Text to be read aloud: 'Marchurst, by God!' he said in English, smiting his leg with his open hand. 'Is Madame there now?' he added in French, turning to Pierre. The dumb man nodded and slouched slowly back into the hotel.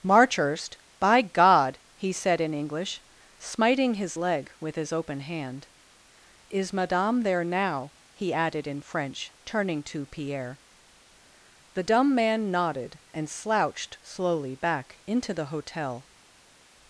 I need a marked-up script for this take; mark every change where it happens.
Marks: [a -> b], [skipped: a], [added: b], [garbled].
'Marchurst, by God!' he said in English, smiting his leg with his open hand. 'Is Madame there now?' he added in French, turning to Pierre. The dumb man nodded and slouched slowly back into the hotel.